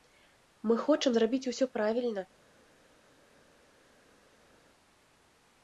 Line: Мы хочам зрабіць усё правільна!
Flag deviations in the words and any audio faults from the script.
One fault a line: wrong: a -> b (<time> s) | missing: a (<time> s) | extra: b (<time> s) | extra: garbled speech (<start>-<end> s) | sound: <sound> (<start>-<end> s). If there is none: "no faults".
no faults